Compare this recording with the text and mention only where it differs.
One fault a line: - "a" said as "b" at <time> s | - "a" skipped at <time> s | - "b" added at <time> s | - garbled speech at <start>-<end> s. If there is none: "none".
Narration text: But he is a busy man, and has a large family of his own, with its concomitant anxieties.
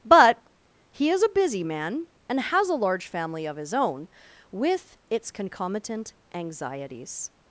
none